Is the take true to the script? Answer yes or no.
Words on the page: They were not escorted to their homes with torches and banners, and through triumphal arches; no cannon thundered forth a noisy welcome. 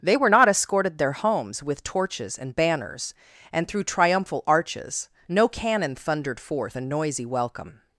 no